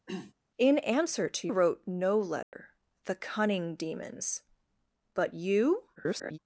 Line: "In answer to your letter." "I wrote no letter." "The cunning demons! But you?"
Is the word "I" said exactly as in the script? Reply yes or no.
no